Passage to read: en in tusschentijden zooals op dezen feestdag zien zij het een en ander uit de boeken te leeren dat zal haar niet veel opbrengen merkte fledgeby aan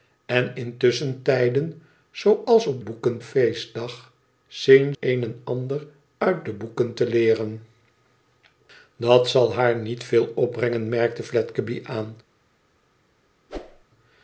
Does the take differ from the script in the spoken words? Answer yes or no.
yes